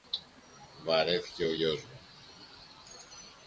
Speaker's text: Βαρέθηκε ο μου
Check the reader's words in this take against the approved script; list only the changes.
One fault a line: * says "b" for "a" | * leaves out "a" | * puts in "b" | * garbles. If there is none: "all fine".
* puts in "γιος"